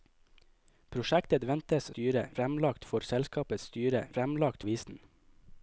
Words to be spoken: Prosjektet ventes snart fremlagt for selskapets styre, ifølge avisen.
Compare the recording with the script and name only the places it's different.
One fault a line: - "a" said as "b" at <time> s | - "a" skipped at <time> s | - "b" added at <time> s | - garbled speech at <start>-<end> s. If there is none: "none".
- "snart" said as "styre" at 1.9 s
- "ifølge" said as "fremlagt" at 4.2 s